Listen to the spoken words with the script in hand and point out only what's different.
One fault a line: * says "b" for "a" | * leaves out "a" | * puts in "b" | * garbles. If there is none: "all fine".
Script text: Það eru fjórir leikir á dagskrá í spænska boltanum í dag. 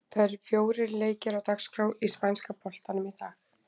all fine